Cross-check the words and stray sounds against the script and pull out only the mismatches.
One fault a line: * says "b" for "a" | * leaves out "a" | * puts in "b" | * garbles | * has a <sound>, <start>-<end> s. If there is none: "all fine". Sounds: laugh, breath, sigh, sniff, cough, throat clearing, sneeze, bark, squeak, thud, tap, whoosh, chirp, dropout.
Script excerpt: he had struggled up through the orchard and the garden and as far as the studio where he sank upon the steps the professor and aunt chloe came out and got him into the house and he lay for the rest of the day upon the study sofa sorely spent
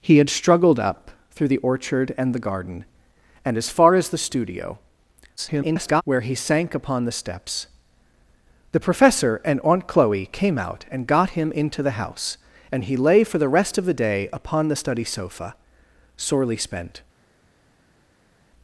* garbles